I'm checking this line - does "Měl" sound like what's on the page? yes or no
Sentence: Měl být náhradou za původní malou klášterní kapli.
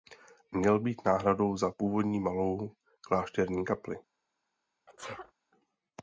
yes